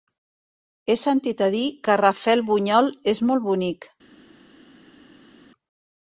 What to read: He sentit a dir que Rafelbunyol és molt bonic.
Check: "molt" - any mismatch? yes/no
no